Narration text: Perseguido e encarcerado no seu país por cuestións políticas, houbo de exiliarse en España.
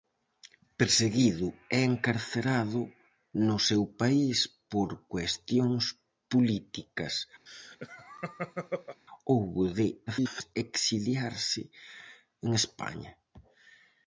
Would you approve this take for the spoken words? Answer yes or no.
no